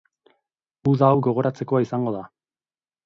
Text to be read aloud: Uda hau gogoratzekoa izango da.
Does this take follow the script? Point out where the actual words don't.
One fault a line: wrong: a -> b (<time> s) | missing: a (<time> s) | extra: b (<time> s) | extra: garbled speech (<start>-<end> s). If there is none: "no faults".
no faults